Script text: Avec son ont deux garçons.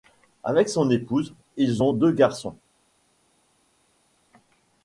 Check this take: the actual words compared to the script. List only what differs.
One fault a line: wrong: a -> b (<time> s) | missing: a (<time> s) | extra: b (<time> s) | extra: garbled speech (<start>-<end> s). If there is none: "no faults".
extra: épouse ils (0.9 s)